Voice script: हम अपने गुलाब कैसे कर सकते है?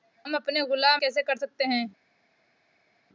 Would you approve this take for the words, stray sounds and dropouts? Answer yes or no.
yes